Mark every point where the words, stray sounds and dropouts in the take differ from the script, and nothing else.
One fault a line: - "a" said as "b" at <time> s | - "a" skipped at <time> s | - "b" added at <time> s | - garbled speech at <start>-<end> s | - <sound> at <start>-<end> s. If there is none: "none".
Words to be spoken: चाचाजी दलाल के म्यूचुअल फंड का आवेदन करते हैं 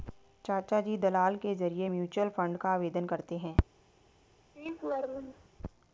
- "जरिए" added at 1.6 s
- laugh at 4.6-5.5 s